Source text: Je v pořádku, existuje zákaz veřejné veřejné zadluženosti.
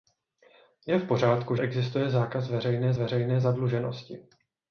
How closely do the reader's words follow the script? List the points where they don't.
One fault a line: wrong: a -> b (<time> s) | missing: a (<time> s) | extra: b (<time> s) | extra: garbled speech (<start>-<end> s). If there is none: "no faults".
no faults